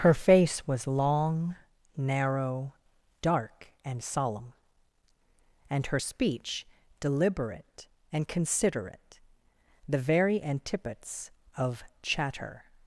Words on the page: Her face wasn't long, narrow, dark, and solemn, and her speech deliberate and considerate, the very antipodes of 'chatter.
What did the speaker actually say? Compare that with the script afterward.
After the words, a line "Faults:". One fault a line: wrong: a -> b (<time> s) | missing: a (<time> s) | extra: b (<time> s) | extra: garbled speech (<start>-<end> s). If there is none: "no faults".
Her face was long, narrow, dark, and solemn, and her speech deliberate and considerate, the very antipodes of 'chatter.
Faults:
wrong: wasn't -> was (0.7 s)